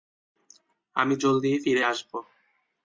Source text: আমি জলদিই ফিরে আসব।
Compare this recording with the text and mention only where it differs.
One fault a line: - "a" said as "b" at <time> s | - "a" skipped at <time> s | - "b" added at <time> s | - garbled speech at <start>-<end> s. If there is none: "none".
none